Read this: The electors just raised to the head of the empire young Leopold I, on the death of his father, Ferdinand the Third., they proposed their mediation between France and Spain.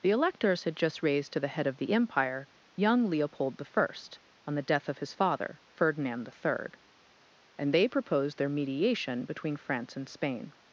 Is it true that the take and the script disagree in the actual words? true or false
true